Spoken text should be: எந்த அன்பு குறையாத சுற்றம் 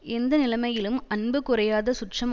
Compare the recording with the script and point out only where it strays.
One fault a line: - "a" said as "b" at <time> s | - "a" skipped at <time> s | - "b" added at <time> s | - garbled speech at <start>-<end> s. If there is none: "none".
- "நிலைமையிலும்" added at 0.4 s